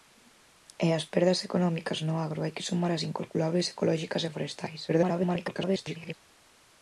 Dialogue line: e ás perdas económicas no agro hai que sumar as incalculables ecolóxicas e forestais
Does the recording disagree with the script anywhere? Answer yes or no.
yes